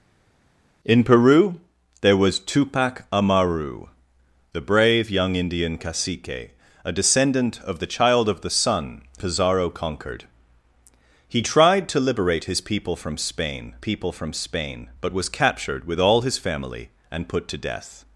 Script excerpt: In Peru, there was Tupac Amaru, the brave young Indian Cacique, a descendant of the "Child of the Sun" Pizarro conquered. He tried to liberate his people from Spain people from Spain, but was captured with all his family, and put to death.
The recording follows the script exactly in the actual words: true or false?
true